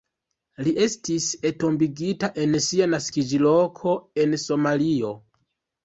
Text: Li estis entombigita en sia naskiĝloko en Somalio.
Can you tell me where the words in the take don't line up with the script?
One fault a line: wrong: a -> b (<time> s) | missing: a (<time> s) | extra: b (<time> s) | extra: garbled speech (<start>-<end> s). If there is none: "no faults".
no faults